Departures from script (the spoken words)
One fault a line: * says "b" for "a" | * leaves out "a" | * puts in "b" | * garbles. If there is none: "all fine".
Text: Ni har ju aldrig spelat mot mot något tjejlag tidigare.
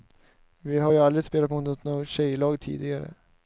* says "Vi" for "Ni"
* leaves out "mot"